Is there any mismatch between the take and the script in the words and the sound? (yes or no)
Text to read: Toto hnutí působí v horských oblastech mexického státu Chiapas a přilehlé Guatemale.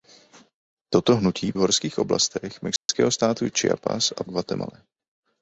yes